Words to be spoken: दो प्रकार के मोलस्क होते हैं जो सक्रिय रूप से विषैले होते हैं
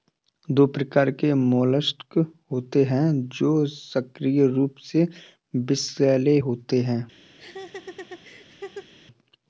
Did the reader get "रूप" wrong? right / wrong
right